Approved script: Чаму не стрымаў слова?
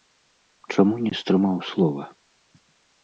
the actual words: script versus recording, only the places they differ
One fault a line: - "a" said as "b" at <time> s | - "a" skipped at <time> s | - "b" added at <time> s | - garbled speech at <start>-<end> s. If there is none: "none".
none